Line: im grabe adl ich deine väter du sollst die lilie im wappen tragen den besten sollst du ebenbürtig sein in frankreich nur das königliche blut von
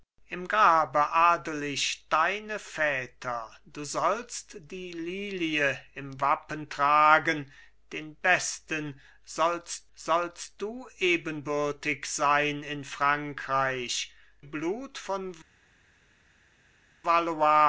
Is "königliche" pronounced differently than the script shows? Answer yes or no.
yes